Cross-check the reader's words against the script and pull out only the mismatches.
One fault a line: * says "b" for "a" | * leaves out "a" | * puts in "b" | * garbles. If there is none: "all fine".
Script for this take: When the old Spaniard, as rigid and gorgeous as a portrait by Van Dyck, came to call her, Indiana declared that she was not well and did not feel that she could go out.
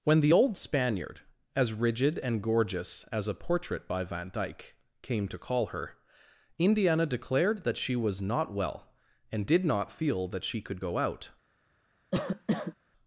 all fine